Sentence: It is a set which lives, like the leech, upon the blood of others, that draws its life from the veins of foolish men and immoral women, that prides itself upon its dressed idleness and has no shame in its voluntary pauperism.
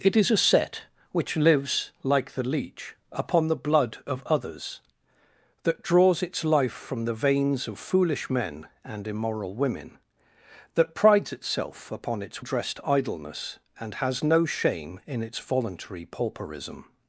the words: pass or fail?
pass